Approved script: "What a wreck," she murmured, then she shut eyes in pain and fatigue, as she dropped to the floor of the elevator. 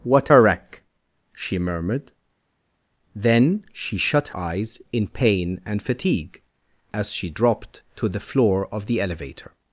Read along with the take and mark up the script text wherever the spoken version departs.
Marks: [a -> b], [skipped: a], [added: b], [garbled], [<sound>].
"What a wreck," she murmured, then she shut eyes in pain and fatigue, as she dropped to the floor of the elevator.